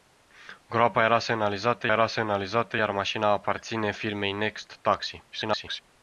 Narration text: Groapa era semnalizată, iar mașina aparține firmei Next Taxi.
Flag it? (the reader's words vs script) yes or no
yes